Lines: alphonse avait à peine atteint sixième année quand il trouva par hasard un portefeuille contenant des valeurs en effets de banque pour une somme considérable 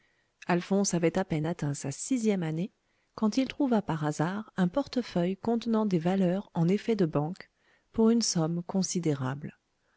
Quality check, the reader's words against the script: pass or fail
fail